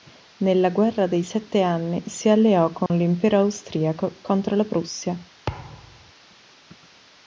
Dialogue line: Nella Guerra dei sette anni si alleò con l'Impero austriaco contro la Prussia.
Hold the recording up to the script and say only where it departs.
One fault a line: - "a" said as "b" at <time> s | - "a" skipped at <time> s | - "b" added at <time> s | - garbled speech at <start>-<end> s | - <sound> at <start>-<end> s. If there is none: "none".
- dropout at 2.9-2.9 s
- thud at 5.5-6.1 s